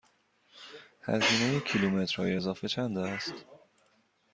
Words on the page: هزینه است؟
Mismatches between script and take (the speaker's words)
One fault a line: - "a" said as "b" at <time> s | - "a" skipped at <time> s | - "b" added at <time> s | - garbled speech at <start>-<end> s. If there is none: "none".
- "کیلومترهای اضافه چند" added at 1.6 s